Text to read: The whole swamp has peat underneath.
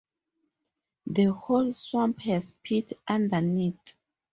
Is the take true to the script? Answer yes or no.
yes